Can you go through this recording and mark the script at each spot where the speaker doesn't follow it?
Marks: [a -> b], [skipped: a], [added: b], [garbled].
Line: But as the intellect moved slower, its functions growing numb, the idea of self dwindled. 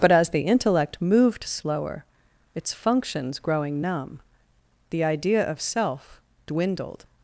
But as the intellect moved slower, its functions growing numb, the idea of self dwindled.